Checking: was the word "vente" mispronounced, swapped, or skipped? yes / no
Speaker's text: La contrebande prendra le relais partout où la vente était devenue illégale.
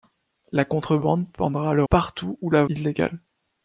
yes